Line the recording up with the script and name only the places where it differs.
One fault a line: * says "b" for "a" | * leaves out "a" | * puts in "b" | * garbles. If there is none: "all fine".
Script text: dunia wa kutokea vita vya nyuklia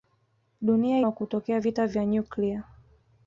all fine